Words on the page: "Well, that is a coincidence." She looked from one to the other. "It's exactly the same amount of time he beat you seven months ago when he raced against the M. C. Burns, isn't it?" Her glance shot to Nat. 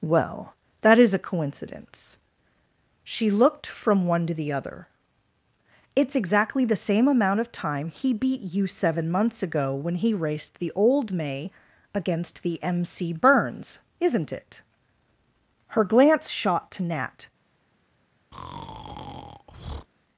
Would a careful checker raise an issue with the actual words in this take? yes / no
yes